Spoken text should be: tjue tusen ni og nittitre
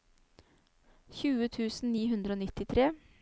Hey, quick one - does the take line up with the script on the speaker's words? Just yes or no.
no